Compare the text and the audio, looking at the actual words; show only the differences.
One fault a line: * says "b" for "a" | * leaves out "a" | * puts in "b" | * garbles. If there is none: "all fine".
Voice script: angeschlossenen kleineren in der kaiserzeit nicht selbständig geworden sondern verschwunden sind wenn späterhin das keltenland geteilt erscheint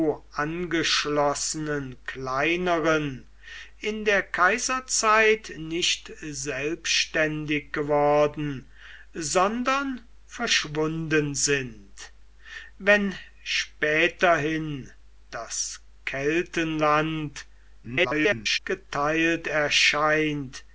* garbles